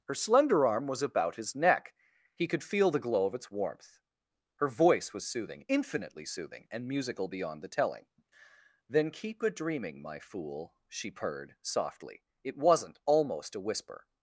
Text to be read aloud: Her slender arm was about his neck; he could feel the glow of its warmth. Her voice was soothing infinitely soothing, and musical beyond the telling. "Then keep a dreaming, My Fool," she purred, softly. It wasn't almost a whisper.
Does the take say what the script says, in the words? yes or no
yes